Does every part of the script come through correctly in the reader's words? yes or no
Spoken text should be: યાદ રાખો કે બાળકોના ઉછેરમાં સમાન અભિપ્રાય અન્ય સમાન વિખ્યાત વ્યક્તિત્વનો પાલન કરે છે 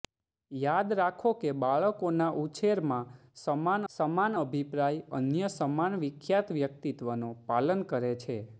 no